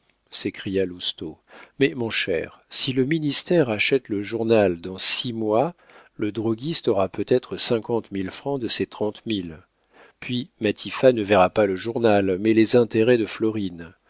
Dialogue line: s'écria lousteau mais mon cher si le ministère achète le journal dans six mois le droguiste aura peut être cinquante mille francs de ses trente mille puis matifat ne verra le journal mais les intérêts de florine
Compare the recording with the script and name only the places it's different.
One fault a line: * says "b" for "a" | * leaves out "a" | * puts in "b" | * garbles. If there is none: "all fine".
* puts in "pas"